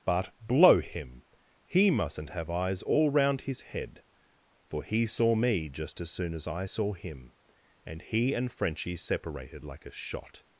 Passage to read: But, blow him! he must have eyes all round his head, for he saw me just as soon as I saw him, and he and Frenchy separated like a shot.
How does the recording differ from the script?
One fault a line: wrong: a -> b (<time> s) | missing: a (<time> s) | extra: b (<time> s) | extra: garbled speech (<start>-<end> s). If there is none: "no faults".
wrong: must -> mustn't (1.9 s)